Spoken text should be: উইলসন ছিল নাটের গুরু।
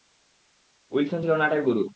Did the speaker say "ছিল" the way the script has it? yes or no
yes